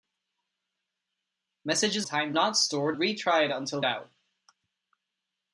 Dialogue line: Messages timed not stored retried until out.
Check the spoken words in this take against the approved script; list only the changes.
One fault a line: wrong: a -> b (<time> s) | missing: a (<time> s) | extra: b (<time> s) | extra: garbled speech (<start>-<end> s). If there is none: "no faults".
no faults